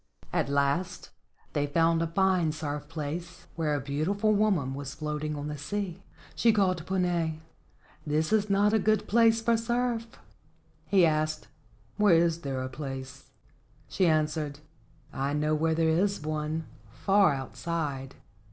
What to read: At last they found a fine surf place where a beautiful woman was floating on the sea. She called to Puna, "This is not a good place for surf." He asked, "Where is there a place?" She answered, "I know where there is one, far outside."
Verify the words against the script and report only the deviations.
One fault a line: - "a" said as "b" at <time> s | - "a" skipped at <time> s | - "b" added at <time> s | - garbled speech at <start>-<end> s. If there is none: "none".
none